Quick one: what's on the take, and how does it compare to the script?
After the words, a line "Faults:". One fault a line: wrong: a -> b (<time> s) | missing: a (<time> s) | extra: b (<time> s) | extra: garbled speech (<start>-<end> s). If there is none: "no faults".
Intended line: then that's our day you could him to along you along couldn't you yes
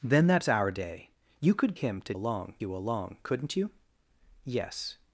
then that's our day you could him to along you along couldn't you yes
Faults:
no faults